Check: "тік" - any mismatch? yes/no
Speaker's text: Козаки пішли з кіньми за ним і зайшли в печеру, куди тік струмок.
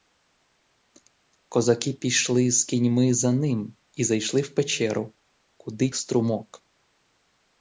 yes